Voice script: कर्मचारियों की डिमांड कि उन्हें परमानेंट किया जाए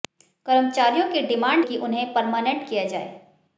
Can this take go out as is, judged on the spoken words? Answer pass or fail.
pass